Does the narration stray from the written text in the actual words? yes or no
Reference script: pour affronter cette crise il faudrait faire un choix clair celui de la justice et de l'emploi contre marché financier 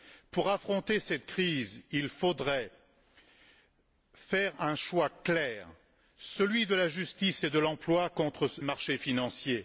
no